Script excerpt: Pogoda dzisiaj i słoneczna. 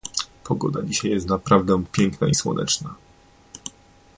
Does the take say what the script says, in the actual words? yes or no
no